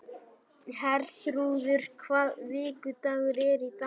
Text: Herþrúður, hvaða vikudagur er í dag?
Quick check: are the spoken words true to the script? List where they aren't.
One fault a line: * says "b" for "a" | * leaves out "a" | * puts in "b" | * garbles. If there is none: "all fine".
all fine